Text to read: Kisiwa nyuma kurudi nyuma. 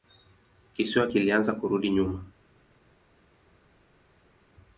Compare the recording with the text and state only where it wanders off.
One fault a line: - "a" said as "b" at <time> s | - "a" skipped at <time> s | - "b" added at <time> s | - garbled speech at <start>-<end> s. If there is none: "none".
- "nyuma" said as "kilianza" at 1.1 s